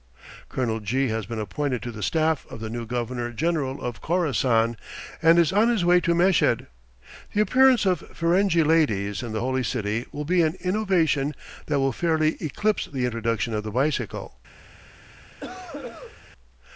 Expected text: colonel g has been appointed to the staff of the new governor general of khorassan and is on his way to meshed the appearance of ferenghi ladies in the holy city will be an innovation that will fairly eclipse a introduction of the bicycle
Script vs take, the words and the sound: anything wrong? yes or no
yes